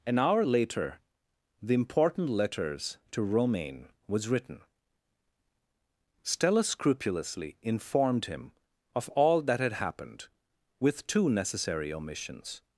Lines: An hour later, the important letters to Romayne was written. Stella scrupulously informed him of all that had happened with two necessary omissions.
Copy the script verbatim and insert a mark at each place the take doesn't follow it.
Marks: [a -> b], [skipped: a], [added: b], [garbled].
An hour later, the important letters to Romayne was written. Stella scrupulously informed him of all that had happened with two necessary omissions.